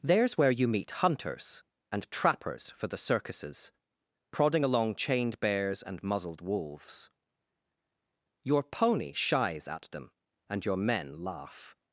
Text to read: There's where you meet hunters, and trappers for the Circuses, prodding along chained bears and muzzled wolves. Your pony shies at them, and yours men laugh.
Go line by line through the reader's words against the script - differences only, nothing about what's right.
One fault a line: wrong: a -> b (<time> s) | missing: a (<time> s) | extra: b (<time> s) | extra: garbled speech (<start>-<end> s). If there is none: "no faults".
wrong: yours -> your (10.6 s)